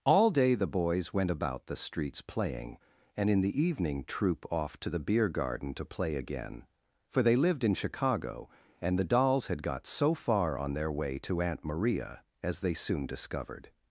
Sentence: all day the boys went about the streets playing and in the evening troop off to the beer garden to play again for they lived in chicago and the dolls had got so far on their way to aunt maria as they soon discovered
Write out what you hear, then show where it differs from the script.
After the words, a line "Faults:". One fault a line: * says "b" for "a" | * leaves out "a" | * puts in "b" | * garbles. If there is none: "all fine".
all day the boys went about the streets playing and in the evening troop off to the beer garden to play again for they lived in chicago and the dolls had got so far on their way to aunt maria as they soon discovered
Faults:
all fine